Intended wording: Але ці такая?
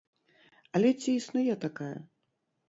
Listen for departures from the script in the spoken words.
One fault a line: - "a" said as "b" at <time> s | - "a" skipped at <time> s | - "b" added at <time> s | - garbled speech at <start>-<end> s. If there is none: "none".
- "існуе" added at 1.2 s